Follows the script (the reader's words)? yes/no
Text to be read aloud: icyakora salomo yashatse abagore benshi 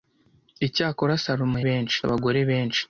no